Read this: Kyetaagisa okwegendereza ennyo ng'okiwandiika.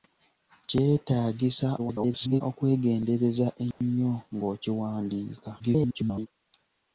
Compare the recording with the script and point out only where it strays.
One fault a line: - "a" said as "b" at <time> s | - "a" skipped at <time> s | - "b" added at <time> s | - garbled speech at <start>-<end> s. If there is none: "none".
- garbled speech at 1.8-2.4 s
- garbled speech at 5.6-6.3 s